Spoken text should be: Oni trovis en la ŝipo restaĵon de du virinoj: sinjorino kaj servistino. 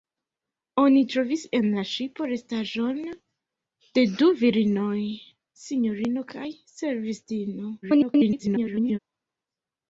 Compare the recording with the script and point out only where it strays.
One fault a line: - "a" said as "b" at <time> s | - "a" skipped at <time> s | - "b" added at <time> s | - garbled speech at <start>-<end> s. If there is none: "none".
- garbled speech at 7.8-9.0 s